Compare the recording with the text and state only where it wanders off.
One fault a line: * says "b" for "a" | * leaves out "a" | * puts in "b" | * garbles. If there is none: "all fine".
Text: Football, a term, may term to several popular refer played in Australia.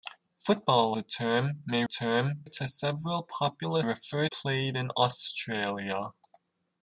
all fine